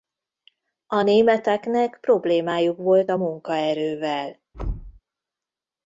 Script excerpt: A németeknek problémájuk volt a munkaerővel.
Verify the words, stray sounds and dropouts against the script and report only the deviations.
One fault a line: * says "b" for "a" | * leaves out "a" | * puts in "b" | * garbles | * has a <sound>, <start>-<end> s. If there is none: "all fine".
* has a thud, 4.5-5.0 s